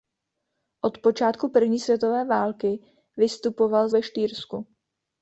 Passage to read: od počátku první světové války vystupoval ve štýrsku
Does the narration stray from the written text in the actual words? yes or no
no